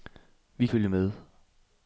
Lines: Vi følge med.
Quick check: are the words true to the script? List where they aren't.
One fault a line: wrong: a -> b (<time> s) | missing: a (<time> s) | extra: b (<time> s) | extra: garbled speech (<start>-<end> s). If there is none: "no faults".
no faults